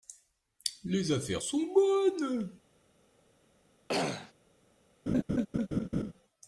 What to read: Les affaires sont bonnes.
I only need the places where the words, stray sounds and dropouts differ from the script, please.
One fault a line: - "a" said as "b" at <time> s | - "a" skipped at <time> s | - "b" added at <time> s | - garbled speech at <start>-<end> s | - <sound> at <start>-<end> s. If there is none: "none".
- throat clearing at 3.9-4.3 s
- laugh at 5.1-6.1 s